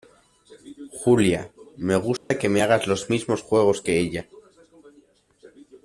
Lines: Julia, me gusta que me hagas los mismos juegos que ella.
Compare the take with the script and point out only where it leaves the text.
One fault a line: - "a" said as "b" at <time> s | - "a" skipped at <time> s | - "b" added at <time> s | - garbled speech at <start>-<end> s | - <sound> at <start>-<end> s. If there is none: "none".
- dropout at 2.2-2.3 s